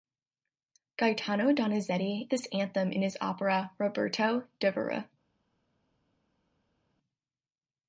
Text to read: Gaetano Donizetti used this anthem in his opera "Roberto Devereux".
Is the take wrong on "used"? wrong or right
wrong